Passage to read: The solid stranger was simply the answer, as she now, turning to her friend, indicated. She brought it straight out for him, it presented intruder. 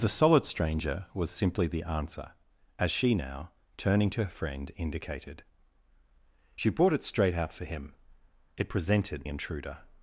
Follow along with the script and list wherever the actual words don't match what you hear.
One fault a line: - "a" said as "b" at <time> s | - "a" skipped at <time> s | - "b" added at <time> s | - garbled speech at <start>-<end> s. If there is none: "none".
none